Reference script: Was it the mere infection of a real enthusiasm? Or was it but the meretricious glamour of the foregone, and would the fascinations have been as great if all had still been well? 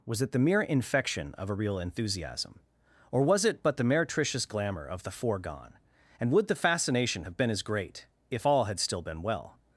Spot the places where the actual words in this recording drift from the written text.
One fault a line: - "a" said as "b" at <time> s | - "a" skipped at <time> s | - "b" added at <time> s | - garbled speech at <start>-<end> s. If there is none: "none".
- "fascinations" said as "fascination" at 6.5 s